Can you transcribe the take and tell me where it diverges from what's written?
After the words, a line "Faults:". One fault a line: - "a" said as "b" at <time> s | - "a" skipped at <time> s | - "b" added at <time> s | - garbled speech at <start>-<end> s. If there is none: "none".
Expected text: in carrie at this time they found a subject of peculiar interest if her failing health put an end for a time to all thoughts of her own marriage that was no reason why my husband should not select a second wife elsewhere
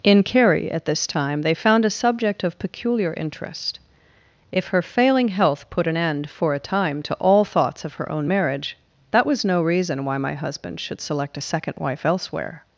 in carrie at this time they found a subject of peculiar interest if her failing health put an end for a time to all thoughts of her own marriage that was no reason why my husband should select a second wife elsewhere
Faults:
- "not" skipped at 11.0 s